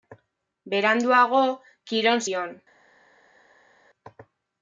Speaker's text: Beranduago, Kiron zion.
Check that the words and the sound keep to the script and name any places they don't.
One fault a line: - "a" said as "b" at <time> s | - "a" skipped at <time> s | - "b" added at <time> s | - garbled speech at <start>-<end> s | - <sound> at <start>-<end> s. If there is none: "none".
none